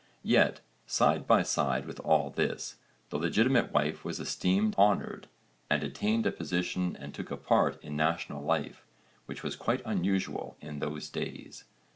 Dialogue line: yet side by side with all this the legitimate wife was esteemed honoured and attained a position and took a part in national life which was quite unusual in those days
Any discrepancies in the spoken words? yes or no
no